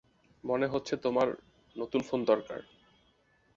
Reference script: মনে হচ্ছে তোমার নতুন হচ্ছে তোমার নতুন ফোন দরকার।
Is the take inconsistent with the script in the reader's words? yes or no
yes